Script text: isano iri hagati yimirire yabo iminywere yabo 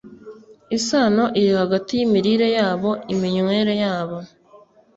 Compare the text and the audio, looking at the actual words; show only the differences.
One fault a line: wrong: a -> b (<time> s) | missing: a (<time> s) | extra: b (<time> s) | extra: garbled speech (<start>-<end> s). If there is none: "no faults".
no faults